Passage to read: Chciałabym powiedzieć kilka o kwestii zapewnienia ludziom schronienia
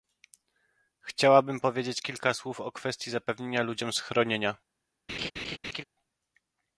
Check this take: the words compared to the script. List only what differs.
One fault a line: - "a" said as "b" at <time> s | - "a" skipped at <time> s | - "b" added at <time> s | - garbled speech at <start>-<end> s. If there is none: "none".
- "słów" added at 2.3 s